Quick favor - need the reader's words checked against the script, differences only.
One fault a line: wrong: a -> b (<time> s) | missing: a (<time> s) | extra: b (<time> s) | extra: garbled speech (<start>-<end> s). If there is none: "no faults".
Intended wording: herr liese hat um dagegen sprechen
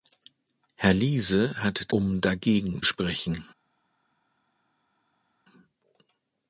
no faults